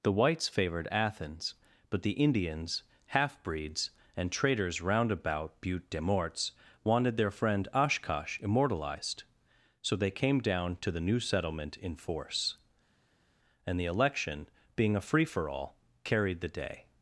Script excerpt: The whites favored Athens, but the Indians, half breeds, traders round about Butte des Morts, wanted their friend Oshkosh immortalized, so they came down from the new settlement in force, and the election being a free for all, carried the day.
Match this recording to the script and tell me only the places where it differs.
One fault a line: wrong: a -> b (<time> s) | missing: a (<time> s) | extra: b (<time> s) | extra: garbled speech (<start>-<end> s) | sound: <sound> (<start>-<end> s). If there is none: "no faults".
extra: and (4.2 s)
wrong: from -> to (10.8 s)